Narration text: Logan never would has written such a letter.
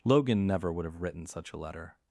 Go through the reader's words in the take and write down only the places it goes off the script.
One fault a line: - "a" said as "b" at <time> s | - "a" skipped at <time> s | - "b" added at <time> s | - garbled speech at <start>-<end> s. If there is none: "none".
- "has" said as "have" at 0.8 s